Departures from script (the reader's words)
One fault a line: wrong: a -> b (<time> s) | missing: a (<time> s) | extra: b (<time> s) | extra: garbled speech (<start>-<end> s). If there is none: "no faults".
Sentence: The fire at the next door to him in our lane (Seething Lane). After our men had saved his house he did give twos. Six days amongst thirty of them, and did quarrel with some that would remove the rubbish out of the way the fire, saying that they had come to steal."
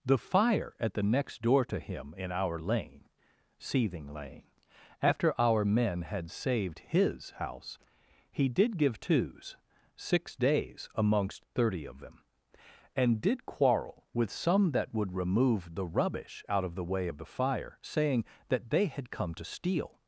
extra: of (17.0 s)